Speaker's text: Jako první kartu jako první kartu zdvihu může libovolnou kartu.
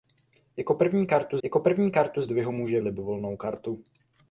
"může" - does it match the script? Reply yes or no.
yes